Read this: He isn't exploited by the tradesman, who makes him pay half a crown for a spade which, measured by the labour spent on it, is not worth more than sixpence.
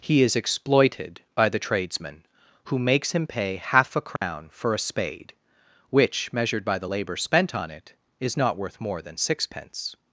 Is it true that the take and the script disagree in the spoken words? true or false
true